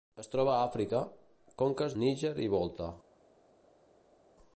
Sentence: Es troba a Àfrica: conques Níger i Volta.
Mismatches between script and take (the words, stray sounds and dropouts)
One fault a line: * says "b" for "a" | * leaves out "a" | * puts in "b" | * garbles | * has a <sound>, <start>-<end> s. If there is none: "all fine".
all fine